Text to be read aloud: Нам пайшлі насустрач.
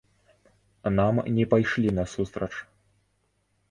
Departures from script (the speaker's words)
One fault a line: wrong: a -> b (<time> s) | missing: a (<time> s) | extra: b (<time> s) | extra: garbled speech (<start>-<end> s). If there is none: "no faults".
extra: не (1.3 s)